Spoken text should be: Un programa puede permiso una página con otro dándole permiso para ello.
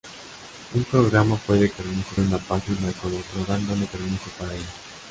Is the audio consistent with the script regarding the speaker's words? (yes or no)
yes